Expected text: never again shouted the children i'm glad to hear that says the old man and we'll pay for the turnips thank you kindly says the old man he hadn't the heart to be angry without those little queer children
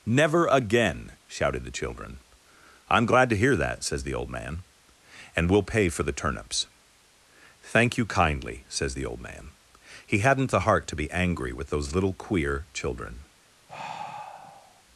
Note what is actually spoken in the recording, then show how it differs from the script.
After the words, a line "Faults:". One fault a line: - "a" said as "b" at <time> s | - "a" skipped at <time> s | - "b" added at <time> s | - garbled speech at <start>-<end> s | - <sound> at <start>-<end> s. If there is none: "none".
never again shouted the children i'm glad to hear that says the old man and we'll pay for the turnips thank you kindly says the old man he hadn't the heart to be angry with those little queer children
Faults:
- "without" said as "with" at 11.5 s
- sigh at 13.7-14.8 s